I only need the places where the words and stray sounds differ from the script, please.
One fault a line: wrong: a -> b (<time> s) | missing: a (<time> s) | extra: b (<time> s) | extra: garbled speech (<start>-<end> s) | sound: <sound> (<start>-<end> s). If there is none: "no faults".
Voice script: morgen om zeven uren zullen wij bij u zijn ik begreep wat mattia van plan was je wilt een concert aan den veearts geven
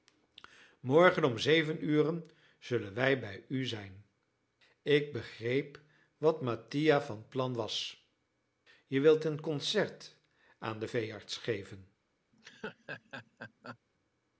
sound: laugh (12.3-13.8 s)